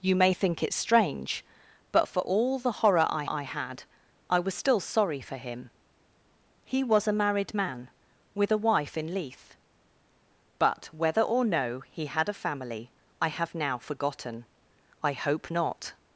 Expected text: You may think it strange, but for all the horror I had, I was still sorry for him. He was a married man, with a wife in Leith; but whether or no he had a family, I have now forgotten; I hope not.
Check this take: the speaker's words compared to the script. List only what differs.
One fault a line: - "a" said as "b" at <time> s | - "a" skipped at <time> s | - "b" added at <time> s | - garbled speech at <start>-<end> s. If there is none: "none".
- "I" added at 3.3 s